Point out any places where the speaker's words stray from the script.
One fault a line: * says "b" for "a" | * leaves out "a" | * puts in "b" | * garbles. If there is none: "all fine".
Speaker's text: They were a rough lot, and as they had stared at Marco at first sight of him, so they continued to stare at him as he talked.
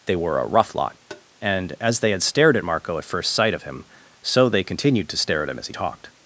all fine